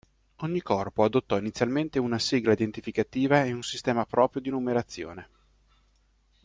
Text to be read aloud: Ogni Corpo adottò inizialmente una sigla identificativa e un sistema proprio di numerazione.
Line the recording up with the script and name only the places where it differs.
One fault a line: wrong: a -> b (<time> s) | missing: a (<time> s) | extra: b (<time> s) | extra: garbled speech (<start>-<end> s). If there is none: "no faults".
no faults